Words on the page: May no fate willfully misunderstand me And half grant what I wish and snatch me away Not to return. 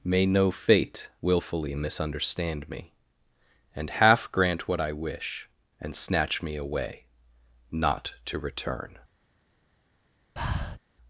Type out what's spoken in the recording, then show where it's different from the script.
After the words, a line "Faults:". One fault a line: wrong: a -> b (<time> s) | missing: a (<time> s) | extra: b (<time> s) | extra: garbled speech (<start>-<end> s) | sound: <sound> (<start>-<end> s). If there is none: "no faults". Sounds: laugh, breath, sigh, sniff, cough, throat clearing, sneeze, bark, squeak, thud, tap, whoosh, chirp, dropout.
May no fate willfully misunderstand me And half grant what I wish and snatch me away Not to return.
Faults:
sound: breath (10.4-10.8 s)